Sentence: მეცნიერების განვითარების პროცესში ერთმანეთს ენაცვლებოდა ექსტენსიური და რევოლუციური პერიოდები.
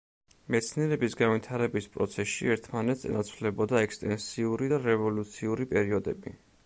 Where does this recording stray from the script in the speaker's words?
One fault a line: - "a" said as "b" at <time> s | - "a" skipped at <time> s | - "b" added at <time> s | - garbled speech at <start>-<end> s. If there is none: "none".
none